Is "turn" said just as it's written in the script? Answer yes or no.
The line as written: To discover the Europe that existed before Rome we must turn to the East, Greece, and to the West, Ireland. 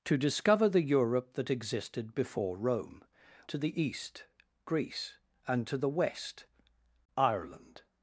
no